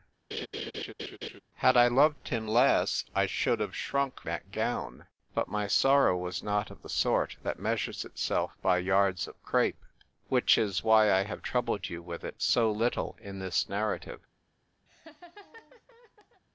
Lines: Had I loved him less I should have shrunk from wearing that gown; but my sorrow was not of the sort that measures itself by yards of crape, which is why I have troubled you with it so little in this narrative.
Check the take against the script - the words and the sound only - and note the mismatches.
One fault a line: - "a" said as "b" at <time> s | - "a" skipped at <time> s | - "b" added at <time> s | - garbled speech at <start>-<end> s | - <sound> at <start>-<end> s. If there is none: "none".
- laugh at 0.3-1.4 s
- "from wearing" skipped at 4.2 s
- laugh at 14.9-16.4 s